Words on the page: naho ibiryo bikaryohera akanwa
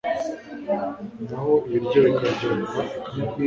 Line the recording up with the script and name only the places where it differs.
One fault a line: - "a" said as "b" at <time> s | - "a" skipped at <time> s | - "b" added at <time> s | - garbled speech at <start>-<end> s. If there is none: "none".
none